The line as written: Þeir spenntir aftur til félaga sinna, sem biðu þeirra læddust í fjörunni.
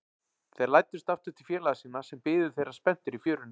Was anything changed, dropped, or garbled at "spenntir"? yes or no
yes